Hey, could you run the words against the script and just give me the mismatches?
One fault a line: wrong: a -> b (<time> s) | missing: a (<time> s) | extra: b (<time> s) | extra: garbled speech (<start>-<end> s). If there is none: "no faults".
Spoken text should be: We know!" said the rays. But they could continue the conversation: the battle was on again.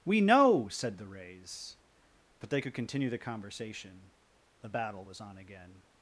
no faults